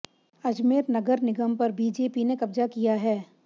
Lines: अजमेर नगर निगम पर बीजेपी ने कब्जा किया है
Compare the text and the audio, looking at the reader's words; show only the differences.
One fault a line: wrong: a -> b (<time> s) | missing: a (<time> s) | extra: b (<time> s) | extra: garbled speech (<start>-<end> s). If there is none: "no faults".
no faults